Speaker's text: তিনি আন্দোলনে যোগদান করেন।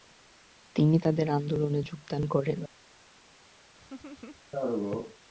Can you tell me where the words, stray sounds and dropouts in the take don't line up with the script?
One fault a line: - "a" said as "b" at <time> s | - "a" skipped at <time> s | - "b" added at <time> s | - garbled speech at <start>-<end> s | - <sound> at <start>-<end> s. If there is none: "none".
- "তাদের" added at 1.0 s
- laugh at 3.8-4.4 s